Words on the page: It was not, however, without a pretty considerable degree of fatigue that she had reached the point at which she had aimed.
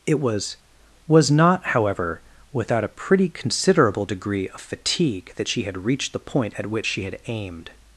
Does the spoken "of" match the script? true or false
true